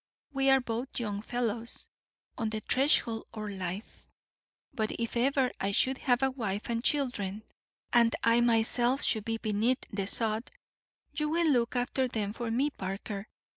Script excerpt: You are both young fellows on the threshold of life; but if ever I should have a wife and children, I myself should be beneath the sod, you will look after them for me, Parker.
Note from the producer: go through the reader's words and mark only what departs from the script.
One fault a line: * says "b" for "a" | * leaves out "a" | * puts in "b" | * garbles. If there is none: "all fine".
* says "We" for "You"
* puts in "and"